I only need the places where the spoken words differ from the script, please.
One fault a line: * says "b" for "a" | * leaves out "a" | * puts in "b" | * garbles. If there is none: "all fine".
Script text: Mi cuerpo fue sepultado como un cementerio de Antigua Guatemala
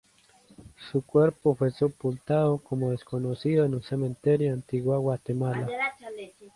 * says "Su" for "Mi"
* puts in "desconocido en"